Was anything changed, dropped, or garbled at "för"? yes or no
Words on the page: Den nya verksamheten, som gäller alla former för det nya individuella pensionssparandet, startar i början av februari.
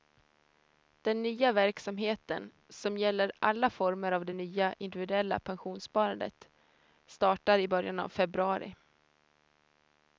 yes